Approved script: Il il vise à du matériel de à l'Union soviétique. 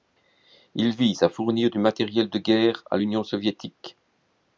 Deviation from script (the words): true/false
true